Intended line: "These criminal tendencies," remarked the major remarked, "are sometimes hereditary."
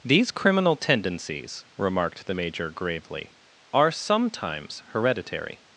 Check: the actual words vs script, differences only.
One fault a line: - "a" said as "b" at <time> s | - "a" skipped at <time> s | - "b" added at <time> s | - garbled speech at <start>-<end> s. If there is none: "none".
- "remarked" said as "gravely" at 2.7 s